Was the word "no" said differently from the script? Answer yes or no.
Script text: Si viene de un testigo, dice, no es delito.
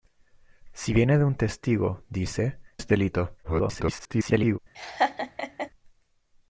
yes